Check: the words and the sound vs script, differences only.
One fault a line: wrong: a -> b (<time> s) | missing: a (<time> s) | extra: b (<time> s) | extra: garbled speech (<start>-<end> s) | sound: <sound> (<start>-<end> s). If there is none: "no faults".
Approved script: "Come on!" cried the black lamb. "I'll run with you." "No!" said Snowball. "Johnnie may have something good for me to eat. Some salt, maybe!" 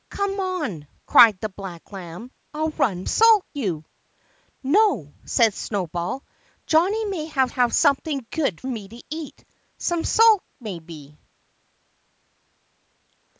wrong: with -> salt (3.1 s)
extra: have (7.5 s)
missing: for (8.6 s)